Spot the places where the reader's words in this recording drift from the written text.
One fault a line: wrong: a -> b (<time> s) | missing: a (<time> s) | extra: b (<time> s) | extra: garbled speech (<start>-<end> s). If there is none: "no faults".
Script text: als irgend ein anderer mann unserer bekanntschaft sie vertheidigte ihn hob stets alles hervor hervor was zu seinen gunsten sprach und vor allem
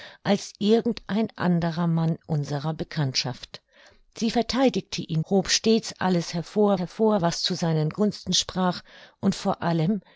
no faults